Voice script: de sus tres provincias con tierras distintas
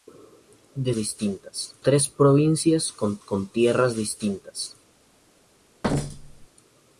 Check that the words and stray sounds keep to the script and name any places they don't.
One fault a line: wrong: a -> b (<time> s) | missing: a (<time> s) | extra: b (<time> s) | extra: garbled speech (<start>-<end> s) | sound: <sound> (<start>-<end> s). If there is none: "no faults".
wrong: sus -> distintas (0.9 s)
extra: con (3.2 s)
sound: thud (5.8-6.5 s)